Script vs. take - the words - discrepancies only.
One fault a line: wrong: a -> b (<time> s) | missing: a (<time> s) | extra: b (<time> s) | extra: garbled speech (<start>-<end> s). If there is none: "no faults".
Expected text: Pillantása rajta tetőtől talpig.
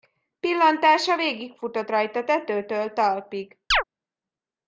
extra: végigfutott (1.1 s)